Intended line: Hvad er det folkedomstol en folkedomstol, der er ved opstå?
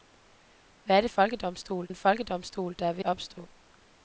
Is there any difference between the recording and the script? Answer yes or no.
no